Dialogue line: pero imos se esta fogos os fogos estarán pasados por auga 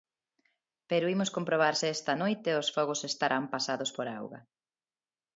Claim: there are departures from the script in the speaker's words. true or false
true